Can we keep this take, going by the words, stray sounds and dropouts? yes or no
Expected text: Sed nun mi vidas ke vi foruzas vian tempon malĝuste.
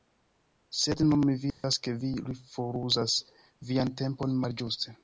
no